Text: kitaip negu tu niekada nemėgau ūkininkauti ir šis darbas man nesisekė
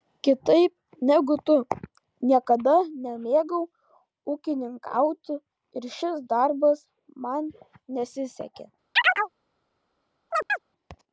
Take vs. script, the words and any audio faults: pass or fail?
fail